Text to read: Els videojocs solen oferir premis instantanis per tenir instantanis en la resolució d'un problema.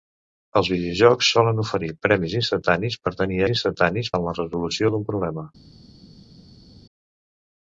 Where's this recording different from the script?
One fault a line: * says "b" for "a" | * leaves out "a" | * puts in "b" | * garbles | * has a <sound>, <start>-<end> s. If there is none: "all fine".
all fine